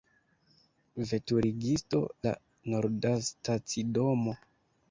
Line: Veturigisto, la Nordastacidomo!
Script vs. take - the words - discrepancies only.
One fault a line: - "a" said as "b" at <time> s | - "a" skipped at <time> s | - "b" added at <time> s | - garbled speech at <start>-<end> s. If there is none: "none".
none